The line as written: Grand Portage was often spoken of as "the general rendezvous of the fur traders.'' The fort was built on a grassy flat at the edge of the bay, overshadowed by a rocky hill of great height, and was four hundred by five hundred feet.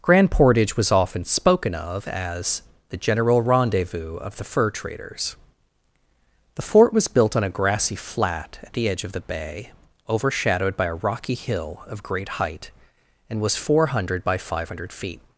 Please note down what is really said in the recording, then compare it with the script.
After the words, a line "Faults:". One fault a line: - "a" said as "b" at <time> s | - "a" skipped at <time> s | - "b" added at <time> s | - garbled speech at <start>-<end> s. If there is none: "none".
Grand Portage was often spoken of as "the general rendezvous of the fur traders.'' The fort was built on a grassy flat at the edge of the bay, overshadowed by a rocky hill of great height, and was four hundred by five hundred feet.
Faults:
none